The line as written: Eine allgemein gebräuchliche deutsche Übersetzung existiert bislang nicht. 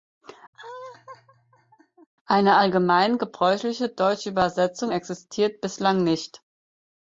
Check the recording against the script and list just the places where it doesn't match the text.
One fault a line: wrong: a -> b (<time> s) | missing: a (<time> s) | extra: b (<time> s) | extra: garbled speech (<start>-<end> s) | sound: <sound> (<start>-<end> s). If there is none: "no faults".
sound: laugh (0.5-2.1 s)